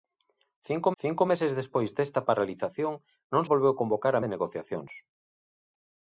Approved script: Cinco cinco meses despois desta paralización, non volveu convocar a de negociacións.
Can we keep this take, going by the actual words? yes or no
yes